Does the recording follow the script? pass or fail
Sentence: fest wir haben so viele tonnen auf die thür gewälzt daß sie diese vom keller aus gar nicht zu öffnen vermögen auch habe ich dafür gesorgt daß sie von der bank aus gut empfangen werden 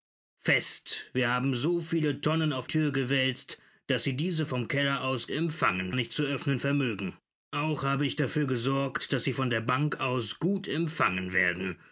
fail